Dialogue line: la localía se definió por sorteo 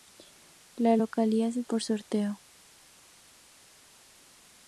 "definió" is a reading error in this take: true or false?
true